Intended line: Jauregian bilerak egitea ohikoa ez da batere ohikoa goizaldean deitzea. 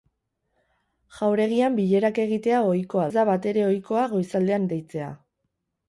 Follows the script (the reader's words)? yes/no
yes